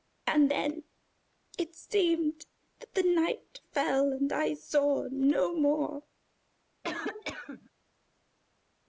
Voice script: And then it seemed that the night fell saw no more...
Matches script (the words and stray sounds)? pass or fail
fail